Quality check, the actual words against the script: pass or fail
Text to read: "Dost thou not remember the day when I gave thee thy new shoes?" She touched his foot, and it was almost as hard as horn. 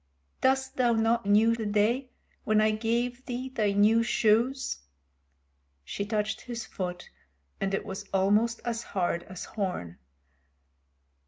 fail